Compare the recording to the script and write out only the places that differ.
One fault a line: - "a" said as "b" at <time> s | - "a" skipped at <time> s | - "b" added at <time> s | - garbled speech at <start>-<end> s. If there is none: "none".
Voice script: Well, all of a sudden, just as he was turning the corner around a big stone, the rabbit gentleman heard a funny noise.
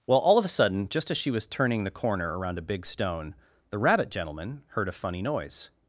- "he" said as "she" at 1.2 s